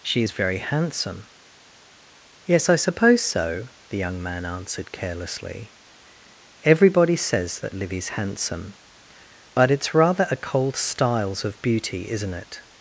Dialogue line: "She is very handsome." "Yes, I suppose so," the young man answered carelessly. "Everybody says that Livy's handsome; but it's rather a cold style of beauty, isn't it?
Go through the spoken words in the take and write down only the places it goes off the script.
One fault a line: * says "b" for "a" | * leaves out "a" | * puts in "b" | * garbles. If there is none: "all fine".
* says "styles" for "style"